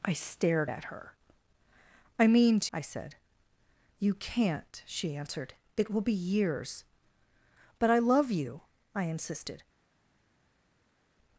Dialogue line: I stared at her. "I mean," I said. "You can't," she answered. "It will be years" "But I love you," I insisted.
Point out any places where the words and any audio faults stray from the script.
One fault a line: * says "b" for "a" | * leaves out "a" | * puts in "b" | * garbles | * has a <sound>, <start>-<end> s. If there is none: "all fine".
all fine